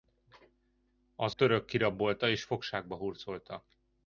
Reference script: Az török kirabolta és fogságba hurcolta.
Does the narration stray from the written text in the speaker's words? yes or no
no